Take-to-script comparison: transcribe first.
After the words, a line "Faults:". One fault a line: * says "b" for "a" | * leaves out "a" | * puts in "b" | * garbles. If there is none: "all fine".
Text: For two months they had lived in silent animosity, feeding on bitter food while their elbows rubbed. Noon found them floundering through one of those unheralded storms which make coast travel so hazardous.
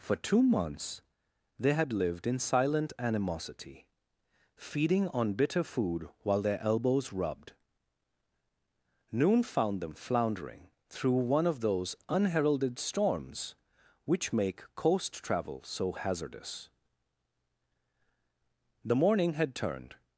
For two months they had lived in silent animosity, feeding on bitter food while their elbows rubbed. Noon found them floundering through one of those unheralded storms which make coast travel so hazardous. The morning had turned
Faults:
* puts in "The morning had turned"